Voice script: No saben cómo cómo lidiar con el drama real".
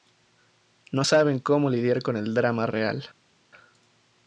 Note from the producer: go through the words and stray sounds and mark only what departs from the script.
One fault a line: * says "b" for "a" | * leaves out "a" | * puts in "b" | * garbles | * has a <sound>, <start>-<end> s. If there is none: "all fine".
* leaves out "cómo"